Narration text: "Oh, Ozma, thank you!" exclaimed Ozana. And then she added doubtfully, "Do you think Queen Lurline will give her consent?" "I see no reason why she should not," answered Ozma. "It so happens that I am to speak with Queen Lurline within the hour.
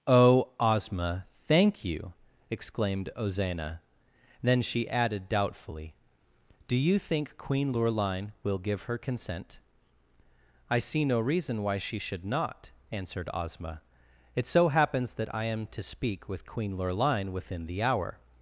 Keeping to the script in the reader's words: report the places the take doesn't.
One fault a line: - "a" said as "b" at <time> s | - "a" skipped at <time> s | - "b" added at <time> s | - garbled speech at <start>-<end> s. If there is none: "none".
- "And" skipped at 3.8 s